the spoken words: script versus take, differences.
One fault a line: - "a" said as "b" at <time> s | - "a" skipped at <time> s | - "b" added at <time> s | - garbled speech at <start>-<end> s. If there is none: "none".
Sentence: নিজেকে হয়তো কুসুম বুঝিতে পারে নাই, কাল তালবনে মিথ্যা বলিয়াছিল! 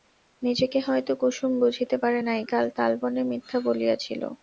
none